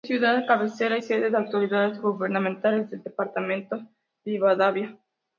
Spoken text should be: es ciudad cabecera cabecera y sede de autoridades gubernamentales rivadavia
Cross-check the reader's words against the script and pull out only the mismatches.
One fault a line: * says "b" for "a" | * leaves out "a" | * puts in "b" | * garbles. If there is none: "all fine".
* leaves out "cabecera"
* puts in "del departamento"